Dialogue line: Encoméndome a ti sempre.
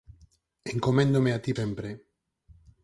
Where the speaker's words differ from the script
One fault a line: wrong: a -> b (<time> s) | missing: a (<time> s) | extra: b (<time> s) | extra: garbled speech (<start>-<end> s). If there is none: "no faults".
no faults